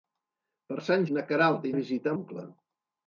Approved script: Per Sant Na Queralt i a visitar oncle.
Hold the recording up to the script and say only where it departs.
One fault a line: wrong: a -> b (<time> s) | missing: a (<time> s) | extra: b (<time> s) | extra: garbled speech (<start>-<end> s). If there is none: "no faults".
no faults